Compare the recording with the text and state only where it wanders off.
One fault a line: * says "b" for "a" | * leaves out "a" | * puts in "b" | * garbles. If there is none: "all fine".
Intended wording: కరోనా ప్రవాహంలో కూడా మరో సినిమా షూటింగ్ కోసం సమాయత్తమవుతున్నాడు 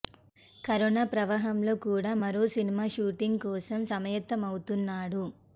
all fine